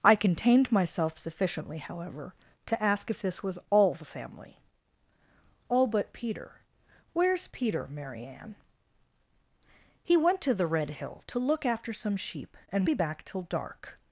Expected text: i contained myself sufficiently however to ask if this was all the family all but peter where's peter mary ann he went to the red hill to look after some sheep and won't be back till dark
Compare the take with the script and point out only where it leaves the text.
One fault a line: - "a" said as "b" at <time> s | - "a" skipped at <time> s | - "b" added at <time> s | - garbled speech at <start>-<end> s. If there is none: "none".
- "won't" skipped at 12.9 s